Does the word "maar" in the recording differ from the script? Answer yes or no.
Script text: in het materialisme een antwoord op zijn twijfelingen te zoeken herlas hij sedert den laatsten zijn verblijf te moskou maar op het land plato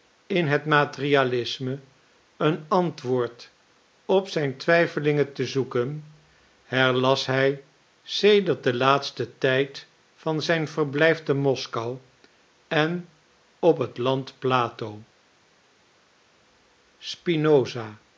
yes